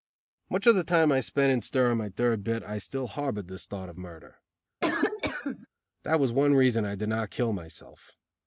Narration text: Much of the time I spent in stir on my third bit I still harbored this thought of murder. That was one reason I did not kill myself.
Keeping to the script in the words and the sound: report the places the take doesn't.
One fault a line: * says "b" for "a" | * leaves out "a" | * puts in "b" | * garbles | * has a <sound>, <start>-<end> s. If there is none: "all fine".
* has a cough, 4.8-5.7 s